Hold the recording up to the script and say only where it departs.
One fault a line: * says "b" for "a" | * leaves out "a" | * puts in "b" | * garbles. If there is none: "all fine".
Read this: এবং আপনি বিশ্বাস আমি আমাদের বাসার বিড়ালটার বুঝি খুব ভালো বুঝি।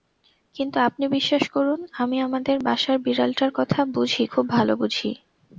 * says "কিন্তু" for "এবং"
* puts in "করুন"
* puts in "কথা"